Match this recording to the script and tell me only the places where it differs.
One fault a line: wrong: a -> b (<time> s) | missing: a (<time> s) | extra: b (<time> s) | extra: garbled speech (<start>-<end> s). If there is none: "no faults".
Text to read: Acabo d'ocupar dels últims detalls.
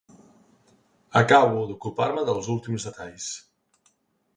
extra: me (2.2 s)